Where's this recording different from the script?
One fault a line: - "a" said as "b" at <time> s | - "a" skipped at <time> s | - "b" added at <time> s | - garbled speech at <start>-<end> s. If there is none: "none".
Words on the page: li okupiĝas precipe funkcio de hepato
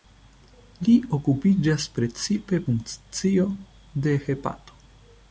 none